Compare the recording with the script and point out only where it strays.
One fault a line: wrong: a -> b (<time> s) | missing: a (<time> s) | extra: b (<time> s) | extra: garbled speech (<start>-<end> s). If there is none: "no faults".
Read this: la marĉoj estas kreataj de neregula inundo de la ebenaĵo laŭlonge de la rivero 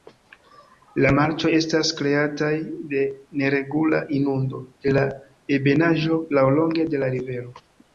no faults